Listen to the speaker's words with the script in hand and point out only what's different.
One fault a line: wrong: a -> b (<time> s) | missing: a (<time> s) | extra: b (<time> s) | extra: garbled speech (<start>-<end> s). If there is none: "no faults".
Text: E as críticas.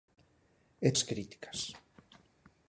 no faults